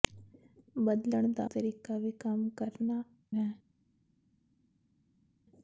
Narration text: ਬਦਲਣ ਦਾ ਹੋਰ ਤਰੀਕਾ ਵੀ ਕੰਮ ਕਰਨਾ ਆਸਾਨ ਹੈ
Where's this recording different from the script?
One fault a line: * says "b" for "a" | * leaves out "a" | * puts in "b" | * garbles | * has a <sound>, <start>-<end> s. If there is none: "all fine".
* leaves out "ਹੋਰ"
* leaves out "ਆਸਾਨ"